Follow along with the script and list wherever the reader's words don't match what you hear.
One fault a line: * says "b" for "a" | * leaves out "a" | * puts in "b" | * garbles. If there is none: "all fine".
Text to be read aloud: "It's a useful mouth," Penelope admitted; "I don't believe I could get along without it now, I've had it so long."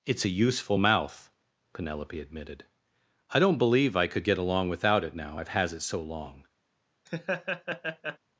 * says "has" for "had"